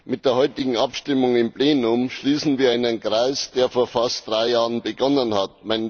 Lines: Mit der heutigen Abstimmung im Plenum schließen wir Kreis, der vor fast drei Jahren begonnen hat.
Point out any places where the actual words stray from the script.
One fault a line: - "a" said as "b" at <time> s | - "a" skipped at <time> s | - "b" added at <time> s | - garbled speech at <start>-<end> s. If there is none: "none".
- "einen" added at 2.7 s